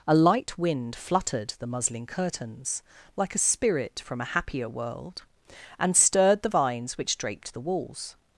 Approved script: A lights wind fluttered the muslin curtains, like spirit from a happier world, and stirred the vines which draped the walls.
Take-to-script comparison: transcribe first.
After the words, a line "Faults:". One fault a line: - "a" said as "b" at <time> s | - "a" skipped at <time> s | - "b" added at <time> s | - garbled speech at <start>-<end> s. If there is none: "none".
A light wind fluttered the muslin curtains, like a spirit from a happier world, and stirred the vines which draped the walls.
Faults:
- "lights" said as "light" at 0.1 s
- "a" added at 3.4 s